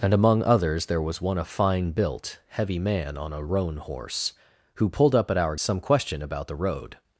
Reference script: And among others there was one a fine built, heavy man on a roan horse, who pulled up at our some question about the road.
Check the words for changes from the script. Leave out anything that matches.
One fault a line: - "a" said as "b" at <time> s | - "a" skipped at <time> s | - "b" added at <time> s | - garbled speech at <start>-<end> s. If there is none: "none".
none